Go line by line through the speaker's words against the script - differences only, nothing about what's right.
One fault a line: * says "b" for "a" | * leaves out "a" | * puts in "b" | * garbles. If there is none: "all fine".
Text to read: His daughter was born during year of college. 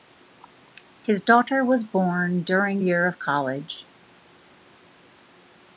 all fine